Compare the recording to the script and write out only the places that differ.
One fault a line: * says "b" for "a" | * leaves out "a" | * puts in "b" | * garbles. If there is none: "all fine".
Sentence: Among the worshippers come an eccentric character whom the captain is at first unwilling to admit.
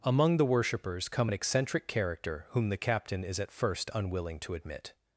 all fine